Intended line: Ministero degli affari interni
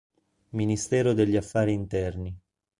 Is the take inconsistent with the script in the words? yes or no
no